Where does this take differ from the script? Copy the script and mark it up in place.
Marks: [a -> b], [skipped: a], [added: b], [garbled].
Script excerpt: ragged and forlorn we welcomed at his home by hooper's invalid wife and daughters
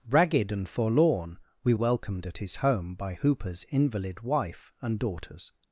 ragged and forlorn we welcomed at his home by hooper's invalid wife and daughters